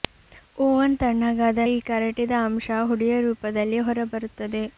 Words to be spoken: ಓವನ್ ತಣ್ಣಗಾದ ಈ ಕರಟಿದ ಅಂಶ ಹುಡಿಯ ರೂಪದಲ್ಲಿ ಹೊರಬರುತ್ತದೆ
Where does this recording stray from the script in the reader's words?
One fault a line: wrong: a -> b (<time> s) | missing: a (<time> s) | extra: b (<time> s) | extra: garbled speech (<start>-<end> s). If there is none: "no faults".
no faults